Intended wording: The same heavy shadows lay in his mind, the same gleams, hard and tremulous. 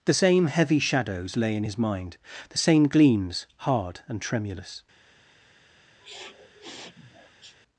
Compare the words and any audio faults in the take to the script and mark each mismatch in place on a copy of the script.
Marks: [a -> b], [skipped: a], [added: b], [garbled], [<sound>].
The same heavy shadows lay in his mind, the same gleams, hard and tremulous. [sniff]